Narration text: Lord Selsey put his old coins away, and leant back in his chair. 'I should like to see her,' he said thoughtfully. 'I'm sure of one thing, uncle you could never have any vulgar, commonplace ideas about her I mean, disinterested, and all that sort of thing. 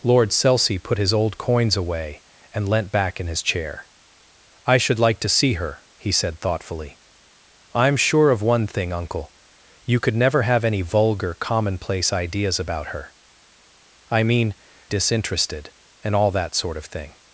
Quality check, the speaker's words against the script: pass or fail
pass